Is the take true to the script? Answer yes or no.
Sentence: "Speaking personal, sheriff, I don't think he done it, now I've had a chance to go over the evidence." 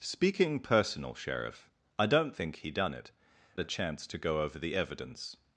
no